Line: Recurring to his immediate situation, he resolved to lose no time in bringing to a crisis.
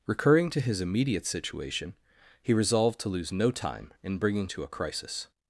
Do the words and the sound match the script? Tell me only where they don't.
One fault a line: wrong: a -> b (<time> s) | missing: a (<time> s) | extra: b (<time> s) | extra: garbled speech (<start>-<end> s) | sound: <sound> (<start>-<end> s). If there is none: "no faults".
no faults